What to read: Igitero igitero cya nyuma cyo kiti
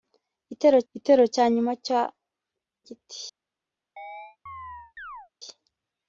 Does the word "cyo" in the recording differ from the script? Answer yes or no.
no